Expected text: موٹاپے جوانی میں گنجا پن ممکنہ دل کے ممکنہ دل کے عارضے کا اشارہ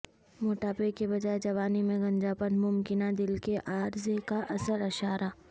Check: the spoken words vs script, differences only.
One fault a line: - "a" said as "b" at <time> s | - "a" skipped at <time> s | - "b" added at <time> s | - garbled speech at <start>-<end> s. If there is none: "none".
- "کے بجائے" added at 0.9 s
- "ممکنہ دل کے" skipped at 3.6 s
- "اصل" added at 4.5 s